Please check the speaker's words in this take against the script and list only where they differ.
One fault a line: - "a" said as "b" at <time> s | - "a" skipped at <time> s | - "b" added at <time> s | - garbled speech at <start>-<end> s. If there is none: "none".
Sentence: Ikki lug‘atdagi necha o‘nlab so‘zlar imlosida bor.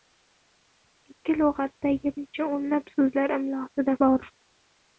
none